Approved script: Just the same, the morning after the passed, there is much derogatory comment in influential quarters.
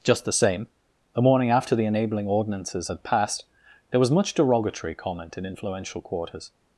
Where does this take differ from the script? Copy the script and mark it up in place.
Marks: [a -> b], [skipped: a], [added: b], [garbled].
Just the same, the morning after the [added: enabling ordinances had] passed, there [is -> was] much derogatory comment in influential quarters.